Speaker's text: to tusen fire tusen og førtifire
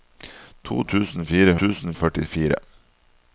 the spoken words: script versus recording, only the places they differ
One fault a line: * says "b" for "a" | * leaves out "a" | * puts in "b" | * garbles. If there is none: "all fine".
all fine